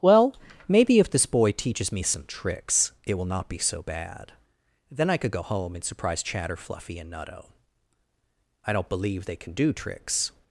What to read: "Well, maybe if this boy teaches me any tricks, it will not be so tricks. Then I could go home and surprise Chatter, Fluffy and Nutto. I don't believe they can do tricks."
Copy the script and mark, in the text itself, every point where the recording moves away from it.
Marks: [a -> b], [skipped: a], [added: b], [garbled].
"Well, maybe if this boy teaches me [any -> some] tricks, it will not be so [tricks. -> bad] Then I could go home and surprise Chatter, Fluffy and Nutto. I don't believe they can do tricks."